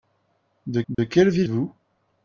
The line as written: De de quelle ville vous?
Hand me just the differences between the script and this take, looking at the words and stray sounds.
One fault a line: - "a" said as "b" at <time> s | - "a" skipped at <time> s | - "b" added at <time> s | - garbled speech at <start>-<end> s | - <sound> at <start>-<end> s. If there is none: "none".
- dropout at 0.9-1.0 s